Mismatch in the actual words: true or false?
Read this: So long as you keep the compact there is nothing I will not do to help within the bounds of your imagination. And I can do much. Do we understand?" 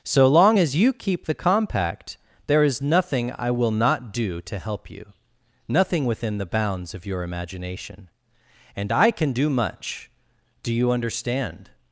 true